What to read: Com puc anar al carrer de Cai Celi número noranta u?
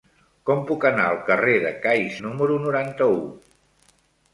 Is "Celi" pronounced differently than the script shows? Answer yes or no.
yes